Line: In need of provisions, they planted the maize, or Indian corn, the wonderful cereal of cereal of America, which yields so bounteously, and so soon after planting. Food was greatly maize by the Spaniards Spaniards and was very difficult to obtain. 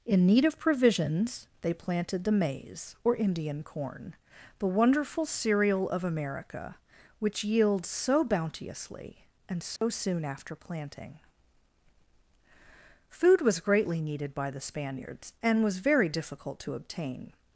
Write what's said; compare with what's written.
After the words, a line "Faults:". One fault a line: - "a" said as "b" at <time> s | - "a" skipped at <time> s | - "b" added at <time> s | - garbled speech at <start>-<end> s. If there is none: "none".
In need of provisions, they planted the maize, or Indian corn, the wonderful cereal of America, which yields so bounteously, and so soon after planting. Food was greatly needed by the Spaniards and was very difficult to obtain.
Faults:
- "cereal of" skipped at 6.0 s
- "maize" said as "needed" at 14.0 s
- "Spaniards" skipped at 15.3 s